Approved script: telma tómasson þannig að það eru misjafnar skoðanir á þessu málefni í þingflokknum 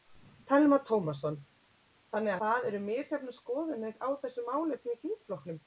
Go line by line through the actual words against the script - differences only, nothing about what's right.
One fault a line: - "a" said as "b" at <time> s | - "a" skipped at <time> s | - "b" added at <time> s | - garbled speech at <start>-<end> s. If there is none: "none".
- "að" skipped at 2.4 s